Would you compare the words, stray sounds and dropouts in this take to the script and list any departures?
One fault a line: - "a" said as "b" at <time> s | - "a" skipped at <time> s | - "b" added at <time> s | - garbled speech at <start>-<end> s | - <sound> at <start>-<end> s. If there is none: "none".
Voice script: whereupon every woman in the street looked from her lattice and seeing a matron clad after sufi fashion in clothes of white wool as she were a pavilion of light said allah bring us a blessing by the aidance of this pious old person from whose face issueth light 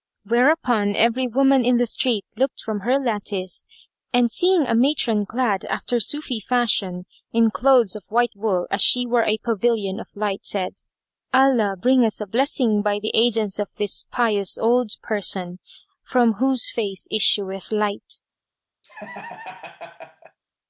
- laugh at 18.8-20.4 s